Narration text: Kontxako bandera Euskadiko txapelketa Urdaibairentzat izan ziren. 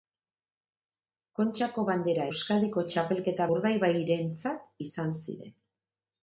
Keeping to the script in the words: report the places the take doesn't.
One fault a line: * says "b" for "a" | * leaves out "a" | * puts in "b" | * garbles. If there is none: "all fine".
all fine